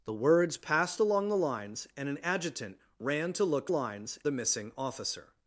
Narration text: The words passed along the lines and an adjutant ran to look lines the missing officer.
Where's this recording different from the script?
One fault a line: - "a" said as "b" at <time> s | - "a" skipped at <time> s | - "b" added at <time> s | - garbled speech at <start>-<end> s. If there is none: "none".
none